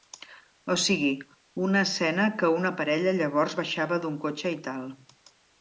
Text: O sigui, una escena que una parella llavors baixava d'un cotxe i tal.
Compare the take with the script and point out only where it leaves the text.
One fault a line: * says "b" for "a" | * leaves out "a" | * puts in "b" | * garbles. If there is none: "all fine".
all fine